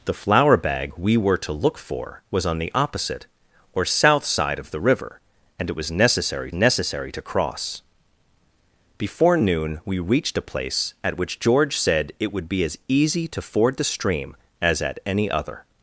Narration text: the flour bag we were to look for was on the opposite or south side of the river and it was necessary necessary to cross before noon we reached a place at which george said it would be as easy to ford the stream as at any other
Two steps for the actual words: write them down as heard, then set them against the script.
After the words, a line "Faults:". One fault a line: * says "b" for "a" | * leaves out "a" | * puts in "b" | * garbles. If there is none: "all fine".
the flour bag we were to look for was on the opposite or south side of the river and it was necessary necessary to cross before noon we reached a place at which george said it would be as easy to ford the stream as at any other
Faults:
all fine